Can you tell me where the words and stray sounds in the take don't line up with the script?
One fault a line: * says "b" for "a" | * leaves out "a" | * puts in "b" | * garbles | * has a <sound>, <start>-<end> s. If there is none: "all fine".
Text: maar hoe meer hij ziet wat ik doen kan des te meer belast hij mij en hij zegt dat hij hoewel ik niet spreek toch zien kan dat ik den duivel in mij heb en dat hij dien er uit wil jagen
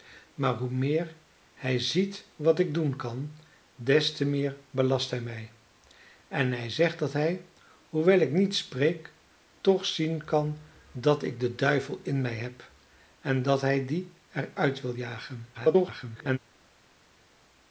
* garbles